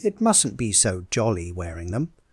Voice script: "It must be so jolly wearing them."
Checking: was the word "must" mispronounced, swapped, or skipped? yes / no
yes